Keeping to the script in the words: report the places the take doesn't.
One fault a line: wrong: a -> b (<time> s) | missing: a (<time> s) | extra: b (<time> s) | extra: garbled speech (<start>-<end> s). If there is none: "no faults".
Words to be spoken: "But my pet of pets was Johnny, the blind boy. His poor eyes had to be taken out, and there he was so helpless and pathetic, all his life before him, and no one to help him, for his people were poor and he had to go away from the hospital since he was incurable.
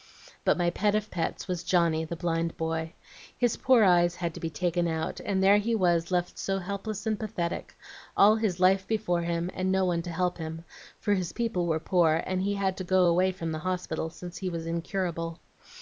extra: left (6.1 s)